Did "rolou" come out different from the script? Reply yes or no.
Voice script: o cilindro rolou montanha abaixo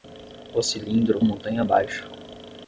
yes